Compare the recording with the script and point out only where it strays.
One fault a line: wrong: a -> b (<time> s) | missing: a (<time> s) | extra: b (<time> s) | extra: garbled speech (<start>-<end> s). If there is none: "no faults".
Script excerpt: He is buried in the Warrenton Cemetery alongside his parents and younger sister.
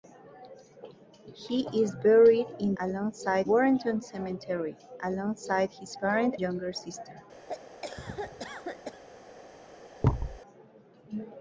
wrong: the -> alongside (2.8 s)
missing: and (6.4 s)